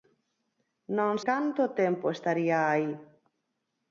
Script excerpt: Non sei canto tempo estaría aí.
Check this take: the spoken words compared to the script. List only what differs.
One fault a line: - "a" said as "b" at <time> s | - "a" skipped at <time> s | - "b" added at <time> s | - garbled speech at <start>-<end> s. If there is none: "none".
- "sei" skipped at 1.1 s